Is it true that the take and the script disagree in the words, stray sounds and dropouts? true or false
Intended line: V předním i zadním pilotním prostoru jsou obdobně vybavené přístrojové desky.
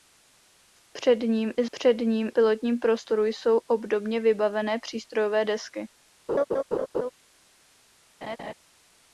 true